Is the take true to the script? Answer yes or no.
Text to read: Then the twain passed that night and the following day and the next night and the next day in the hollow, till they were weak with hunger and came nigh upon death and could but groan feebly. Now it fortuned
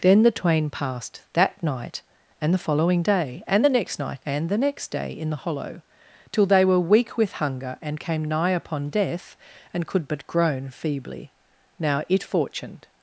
yes